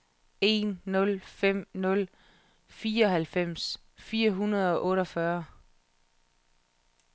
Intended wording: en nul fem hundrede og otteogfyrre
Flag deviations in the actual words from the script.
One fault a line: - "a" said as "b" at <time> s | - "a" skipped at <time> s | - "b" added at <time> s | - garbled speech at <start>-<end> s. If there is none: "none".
- "nul fireoghalvfems fire" added at 1.7 s